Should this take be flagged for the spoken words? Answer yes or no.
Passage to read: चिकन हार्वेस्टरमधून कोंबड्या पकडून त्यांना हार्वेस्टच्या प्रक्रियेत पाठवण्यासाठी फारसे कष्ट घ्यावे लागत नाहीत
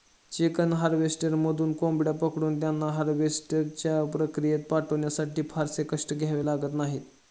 no